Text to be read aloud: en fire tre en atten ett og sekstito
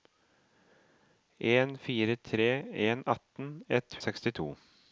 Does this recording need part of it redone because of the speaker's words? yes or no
no